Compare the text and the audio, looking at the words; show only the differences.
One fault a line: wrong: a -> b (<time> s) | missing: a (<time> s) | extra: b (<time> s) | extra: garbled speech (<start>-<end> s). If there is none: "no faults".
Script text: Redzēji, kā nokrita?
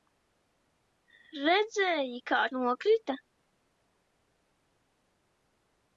no faults